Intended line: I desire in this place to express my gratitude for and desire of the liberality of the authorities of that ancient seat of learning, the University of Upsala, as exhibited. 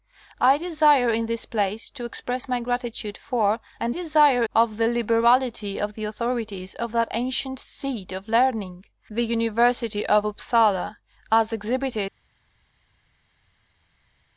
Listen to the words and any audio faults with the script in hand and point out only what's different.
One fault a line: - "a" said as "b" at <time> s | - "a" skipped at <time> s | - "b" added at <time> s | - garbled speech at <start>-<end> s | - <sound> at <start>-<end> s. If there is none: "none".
none